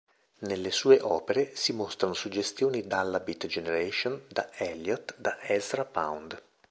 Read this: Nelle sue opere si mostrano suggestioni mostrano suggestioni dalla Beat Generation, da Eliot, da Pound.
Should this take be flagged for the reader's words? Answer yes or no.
yes